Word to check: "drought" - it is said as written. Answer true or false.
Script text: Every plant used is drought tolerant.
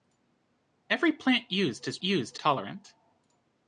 false